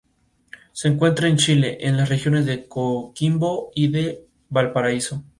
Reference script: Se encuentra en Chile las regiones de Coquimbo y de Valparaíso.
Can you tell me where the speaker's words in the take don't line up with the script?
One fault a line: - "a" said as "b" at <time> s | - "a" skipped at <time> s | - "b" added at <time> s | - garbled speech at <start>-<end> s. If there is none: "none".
- "en" added at 1.8 s